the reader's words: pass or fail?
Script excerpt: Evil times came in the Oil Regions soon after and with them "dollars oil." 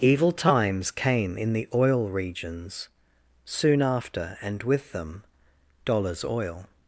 pass